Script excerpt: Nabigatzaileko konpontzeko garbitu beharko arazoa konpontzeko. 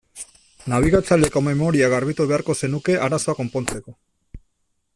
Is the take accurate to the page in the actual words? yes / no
no